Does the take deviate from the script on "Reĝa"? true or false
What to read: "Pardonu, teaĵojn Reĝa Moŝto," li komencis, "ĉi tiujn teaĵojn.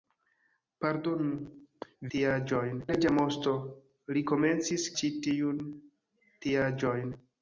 false